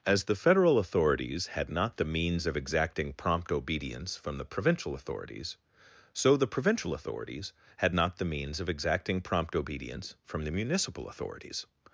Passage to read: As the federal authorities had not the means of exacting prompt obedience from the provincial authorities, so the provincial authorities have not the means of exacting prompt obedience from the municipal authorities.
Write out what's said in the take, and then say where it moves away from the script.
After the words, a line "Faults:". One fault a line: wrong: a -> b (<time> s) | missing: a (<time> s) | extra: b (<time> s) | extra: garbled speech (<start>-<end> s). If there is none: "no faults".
As the federal authorities had not the means of exacting prompt obedience from the provincial authorities, so the provincial authorities had not the means of exacting prompt obedience from the municipal authorities.
Faults:
wrong: have -> had (7.8 s)